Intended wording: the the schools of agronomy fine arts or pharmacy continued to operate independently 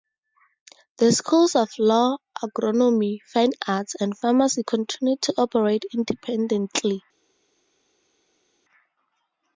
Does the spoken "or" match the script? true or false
false